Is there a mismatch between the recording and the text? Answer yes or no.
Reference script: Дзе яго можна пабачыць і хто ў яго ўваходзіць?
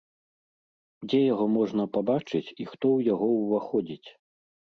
no